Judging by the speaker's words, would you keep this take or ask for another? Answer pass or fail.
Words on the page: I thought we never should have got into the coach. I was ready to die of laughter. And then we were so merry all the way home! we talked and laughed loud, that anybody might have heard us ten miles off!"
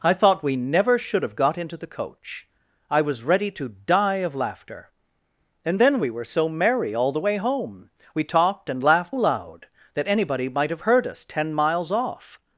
pass